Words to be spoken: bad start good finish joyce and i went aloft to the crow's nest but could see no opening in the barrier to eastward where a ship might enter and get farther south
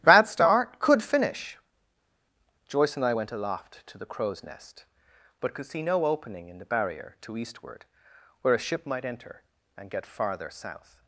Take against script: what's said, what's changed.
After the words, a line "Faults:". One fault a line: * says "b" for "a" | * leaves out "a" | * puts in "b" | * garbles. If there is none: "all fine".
bad start could finish joyce and i went aloft to the crow's nest but could see no opening in the barrier to eastward where a ship might enter and get farther south
Faults:
* says "could" for "good"